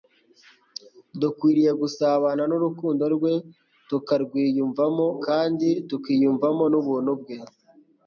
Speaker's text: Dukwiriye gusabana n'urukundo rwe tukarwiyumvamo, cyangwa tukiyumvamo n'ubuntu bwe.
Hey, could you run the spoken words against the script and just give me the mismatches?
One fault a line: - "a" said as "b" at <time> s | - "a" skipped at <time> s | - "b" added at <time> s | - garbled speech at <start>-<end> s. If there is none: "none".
- "cyangwa" said as "kandi" at 5.2 s